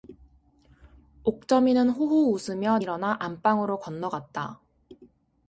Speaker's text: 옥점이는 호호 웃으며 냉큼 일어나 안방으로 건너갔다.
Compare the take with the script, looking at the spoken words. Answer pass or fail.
fail